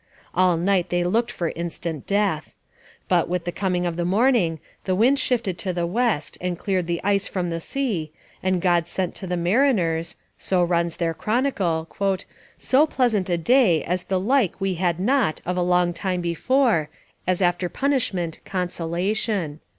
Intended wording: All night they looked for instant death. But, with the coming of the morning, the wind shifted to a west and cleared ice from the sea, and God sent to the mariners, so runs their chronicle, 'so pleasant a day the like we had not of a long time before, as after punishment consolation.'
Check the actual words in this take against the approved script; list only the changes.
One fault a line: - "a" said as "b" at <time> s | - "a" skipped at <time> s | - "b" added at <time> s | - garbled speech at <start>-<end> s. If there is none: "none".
- "a" said as "the" at 5.7 s
- "the" added at 6.9 s
- "as" added at 13.8 s